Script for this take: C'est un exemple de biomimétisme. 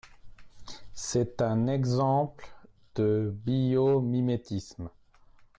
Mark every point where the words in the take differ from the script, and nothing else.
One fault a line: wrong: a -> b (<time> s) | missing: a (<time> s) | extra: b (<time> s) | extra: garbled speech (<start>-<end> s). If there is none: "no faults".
no faults